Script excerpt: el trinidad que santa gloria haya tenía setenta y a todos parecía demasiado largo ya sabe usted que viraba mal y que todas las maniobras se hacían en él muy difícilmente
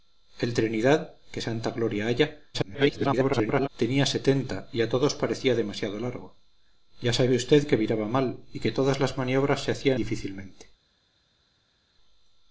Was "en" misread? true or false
true